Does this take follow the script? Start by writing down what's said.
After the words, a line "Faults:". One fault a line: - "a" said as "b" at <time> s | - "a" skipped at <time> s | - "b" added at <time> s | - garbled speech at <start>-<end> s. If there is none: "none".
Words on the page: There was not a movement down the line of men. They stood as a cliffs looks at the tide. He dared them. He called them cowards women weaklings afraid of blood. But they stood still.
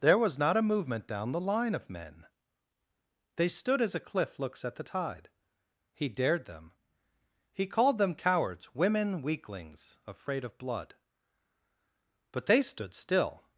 There was not a movement down the line of men. They stood as a cliff looks at the tide. He dared them. He called them cowards women weaklings afraid of blood. But they stood still.
Faults:
- "cliffs" said as "cliff" at 4.0 s